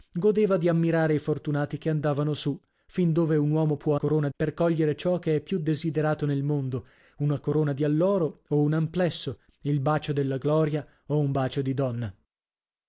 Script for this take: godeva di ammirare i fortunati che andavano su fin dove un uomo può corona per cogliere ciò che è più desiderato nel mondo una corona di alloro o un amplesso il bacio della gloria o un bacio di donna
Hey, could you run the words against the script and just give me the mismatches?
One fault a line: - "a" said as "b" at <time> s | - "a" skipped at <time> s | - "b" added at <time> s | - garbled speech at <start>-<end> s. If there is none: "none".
none